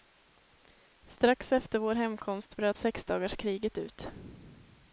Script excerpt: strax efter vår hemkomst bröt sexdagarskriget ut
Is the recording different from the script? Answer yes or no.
no